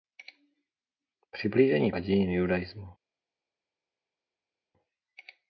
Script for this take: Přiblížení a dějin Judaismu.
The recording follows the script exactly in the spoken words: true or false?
true